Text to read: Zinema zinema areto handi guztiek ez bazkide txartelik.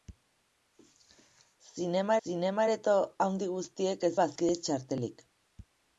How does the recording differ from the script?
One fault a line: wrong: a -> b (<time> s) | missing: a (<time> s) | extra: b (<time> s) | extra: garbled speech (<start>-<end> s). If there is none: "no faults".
no faults